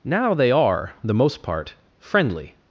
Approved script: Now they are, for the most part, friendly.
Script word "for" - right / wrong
wrong